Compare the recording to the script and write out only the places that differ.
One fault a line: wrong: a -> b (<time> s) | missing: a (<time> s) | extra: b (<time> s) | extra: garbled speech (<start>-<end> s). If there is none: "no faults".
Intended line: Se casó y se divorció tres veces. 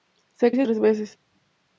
missing: casó (0.5 s)
missing: divorció (0.7 s)